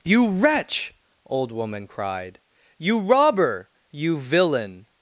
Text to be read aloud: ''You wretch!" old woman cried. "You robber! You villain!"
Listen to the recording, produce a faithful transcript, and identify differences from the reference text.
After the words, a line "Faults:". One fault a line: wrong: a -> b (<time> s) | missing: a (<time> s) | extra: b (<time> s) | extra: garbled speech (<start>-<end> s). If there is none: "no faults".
''You wretch!" old woman cried. "You robber! You villain!"
Faults:
no faults